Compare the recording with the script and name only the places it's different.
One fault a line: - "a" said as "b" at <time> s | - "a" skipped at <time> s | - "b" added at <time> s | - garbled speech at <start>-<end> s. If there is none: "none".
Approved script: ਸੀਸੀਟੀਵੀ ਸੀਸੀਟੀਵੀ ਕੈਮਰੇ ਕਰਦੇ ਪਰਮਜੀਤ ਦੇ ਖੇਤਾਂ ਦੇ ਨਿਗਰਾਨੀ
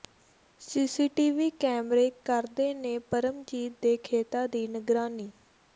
- "ਸੀਸੀਟੀਵੀ" skipped at 1.5 s
- "ਨੇ" added at 2.7 s
- "ਦੇ" said as "ਦੀ" at 4.5 s